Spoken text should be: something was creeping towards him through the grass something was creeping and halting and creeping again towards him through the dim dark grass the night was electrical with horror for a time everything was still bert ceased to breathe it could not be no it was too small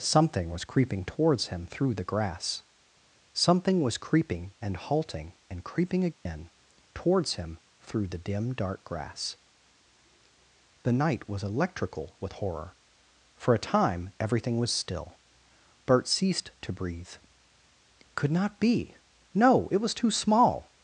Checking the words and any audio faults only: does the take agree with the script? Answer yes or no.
no